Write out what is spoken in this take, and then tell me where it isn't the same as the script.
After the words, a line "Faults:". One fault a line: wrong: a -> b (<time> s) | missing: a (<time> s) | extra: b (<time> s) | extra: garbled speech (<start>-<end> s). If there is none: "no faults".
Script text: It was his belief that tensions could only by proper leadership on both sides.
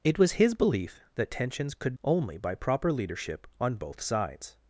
It was his belief that tensions could only by proper leadership on both sides.
Faults:
no faults